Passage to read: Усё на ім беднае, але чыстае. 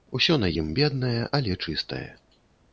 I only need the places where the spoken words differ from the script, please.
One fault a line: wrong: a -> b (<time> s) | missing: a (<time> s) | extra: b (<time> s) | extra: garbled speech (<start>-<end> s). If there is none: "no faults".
no faults